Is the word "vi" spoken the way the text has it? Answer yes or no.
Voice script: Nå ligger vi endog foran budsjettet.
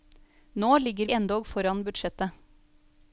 no